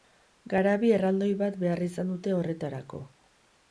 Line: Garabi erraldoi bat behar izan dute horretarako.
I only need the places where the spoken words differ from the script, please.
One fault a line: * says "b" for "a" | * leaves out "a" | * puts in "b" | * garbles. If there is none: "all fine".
all fine